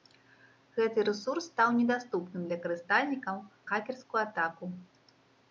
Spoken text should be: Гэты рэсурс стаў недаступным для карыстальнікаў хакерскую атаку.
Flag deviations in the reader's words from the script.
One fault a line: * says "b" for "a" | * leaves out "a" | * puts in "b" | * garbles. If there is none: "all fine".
all fine